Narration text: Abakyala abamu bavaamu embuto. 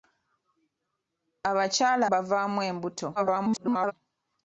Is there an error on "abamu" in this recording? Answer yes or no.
yes